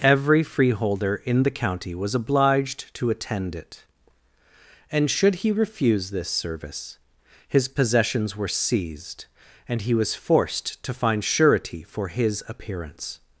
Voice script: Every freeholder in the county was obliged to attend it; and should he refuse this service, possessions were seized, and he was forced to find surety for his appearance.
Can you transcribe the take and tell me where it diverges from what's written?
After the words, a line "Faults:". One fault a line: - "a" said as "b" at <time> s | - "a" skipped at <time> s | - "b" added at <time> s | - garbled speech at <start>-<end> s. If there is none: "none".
Every freeholder in the county was obliged to attend it; and should he refuse this service, his possessions were seized, and he was forced to find surety for his appearance.
Faults:
- "his" added at 7.5 s